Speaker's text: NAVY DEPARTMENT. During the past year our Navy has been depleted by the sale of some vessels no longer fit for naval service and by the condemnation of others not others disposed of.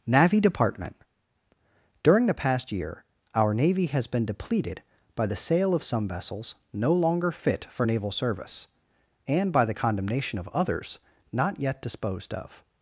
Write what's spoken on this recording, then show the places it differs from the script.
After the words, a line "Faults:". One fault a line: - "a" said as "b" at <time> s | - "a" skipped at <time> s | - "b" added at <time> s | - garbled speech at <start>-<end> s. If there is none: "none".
NAVY DEPARTMENT. During the past year our Navy has been depleted by the sale of some vessels no longer fit for naval service and by the condemnation of others not yet disposed of.
Faults:
- "others" said as "yet" at 11.6 s